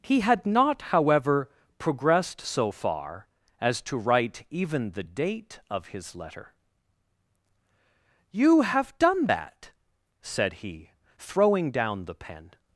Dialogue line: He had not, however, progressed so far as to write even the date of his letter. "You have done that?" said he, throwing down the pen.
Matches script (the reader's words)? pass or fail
pass